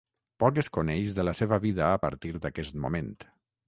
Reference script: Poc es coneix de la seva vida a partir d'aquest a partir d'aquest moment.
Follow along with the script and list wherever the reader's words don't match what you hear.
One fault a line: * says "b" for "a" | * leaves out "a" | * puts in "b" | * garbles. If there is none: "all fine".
* leaves out "a partir d'aquest"